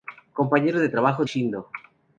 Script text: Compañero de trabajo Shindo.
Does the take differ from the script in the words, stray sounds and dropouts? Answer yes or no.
no